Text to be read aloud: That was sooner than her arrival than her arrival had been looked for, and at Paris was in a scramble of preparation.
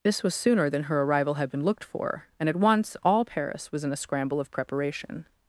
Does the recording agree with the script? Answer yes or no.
no